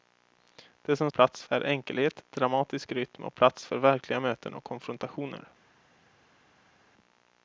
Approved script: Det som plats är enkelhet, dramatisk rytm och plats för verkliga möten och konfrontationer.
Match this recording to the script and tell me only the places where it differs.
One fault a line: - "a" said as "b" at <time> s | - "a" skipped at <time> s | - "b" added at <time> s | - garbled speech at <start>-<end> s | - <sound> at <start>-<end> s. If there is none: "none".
none